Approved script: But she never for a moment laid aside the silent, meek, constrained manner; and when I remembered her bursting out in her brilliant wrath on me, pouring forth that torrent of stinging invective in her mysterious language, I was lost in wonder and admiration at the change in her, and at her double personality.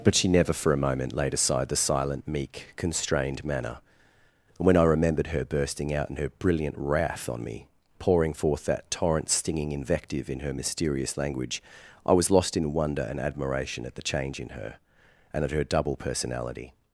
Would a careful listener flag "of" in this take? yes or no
yes